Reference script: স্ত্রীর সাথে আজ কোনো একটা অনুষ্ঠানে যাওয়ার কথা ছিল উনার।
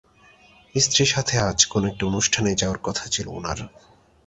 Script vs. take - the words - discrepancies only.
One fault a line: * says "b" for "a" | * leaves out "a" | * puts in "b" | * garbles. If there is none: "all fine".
all fine